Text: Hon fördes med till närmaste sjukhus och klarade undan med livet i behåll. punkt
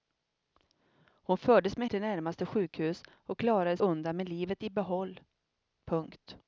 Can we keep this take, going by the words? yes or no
yes